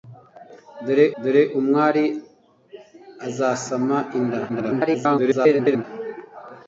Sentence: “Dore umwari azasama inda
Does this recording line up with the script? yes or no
no